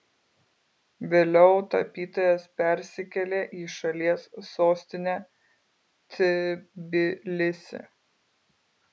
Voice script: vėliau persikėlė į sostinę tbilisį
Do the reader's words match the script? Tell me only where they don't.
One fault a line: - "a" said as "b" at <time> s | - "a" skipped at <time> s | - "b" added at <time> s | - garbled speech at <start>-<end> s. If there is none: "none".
- "tapytojas" added at 1.7 s
- "šalies" added at 3.8 s